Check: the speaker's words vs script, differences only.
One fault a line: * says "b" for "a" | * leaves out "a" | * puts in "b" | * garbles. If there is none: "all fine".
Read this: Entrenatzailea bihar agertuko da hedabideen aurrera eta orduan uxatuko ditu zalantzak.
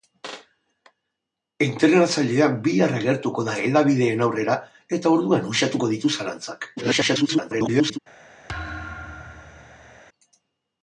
* garbles